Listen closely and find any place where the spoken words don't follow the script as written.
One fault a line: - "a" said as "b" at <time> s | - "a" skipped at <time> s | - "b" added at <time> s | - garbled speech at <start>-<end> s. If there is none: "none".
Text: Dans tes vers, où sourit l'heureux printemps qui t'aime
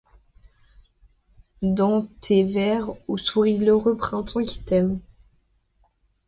none